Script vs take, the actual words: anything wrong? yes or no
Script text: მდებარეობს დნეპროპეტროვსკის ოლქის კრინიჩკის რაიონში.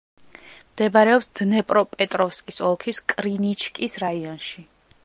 no